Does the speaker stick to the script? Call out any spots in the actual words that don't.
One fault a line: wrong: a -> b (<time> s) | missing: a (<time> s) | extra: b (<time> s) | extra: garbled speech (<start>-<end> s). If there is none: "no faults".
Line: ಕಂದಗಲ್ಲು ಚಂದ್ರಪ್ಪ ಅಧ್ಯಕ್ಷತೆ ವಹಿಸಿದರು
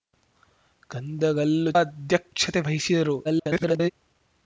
missing: ಚಂದ್ರಪ್ಪ (1.7 s)
extra: garbled speech (3.2-3.9 s)